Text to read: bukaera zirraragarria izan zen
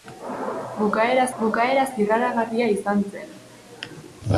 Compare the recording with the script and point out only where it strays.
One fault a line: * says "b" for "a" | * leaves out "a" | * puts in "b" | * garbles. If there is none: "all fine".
* puts in "bukaera"